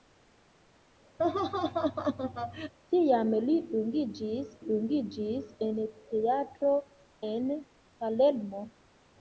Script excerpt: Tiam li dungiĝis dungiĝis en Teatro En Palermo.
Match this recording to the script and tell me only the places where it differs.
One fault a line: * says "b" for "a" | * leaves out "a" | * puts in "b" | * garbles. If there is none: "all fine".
all fine